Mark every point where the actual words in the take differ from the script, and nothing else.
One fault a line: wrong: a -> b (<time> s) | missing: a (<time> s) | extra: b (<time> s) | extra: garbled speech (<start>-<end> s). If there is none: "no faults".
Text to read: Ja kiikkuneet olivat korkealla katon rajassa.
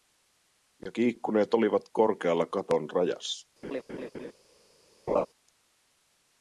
no faults